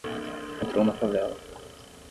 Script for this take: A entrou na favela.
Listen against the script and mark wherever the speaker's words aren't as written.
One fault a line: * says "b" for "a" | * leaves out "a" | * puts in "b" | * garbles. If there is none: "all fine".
all fine